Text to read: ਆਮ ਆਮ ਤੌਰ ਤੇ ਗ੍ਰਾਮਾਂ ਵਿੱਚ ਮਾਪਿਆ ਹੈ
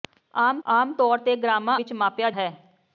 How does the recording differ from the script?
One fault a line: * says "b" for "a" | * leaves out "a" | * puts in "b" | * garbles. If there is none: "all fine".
all fine